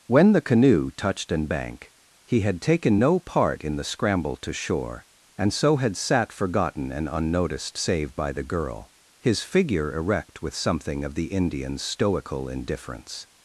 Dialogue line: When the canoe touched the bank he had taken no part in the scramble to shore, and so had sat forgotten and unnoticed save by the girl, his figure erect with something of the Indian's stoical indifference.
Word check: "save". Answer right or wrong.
right